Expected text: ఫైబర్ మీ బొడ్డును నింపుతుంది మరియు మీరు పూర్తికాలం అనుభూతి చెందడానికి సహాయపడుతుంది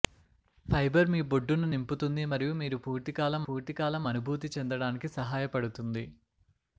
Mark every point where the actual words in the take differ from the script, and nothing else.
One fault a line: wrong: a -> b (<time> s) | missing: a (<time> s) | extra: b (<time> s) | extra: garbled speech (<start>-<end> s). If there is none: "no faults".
extra: పూర్తికాలం (3.5 s)